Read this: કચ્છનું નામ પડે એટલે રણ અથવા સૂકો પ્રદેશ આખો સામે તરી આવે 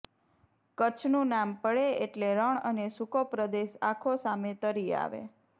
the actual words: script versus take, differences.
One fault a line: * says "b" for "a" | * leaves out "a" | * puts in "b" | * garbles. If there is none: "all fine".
* says "અને" for "અથવા"